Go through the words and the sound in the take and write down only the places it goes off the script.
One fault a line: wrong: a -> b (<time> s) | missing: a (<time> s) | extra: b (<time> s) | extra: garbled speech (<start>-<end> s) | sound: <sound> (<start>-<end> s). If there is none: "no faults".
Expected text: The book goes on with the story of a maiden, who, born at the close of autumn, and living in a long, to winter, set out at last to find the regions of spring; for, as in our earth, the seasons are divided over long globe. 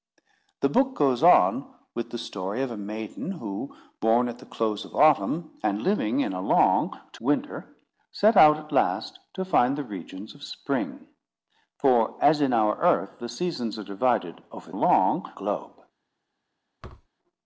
sound: thud (16.8-17.1 s)